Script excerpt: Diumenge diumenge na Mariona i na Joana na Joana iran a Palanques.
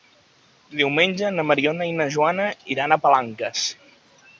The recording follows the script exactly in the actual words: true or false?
false